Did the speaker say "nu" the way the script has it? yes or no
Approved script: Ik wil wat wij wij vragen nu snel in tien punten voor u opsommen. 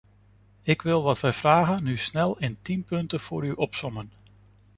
yes